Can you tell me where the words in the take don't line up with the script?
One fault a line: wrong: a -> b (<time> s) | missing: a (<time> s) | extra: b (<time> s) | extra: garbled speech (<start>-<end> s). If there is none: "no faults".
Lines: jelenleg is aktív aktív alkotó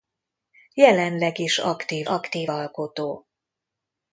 no faults